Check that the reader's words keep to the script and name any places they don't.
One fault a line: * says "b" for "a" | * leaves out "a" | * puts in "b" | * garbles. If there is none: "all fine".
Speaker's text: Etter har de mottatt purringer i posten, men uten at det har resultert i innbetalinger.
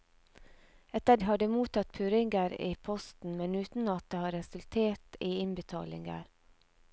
all fine